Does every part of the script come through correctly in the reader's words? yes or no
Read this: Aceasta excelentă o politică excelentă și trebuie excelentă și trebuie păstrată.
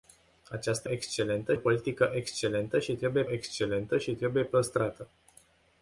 yes